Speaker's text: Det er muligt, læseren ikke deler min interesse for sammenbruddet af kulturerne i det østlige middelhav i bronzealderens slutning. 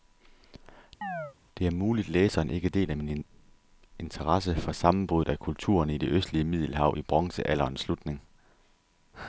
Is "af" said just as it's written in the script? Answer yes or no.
yes